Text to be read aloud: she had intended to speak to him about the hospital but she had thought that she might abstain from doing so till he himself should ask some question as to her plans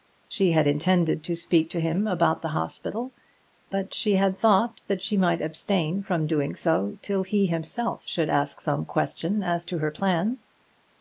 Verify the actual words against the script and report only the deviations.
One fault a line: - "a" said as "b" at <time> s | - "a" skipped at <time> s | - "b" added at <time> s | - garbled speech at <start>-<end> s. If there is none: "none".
none